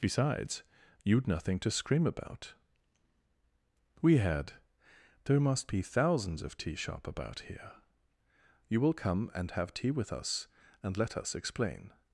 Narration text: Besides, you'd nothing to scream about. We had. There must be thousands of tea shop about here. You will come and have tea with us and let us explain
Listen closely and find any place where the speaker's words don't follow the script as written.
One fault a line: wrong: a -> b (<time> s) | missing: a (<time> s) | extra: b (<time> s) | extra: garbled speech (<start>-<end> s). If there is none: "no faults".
no faults